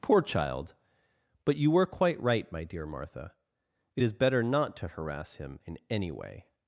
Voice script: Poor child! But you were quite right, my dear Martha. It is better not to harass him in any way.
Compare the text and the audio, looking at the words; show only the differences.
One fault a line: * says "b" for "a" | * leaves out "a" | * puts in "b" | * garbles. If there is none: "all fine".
all fine